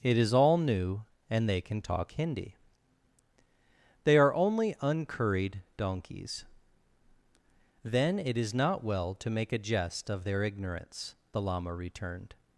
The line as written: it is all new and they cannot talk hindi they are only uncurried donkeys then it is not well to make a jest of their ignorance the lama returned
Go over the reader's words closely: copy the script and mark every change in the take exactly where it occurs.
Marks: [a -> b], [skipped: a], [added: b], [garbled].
it is all new and they [cannot -> can] talk hindi they are only uncurried donkeys then it is not well to make a jest of their ignorance the lama returned